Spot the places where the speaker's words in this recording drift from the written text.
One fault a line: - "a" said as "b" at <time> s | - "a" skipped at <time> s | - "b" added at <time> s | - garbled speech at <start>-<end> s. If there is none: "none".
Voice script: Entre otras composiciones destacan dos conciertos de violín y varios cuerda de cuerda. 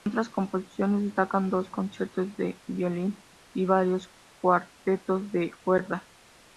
- "cuerda" said as "cuartetos" at 4.4 s